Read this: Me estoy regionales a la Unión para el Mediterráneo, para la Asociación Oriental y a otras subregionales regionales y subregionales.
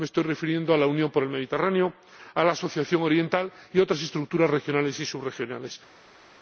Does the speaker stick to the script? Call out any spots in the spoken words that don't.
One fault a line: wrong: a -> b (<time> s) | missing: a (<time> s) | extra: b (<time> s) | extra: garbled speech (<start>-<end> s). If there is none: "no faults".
wrong: regionales -> refiriendo (0.2 s)
wrong: para -> a (2.3 s)
wrong: subregionales -> estructuras (4.0 s)